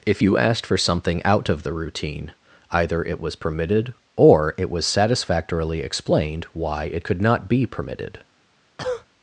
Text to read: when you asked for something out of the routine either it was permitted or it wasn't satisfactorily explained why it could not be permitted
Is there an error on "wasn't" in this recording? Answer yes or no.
yes